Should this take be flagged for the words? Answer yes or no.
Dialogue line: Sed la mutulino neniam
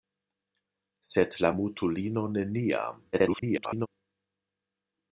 yes